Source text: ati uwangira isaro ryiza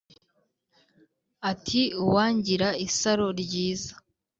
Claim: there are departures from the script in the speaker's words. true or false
false